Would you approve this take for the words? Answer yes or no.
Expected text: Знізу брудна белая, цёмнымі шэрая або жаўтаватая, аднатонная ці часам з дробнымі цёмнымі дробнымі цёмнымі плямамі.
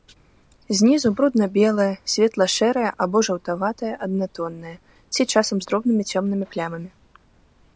no